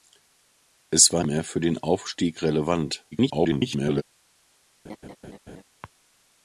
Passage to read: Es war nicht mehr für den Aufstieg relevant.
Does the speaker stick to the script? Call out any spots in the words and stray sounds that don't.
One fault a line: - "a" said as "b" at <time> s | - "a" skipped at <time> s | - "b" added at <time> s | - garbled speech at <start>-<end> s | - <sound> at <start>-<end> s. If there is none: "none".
- "nicht" skipped at 1.2 s
- garbled speech at 3.1-4.0 s
- laugh at 4.8-5.6 s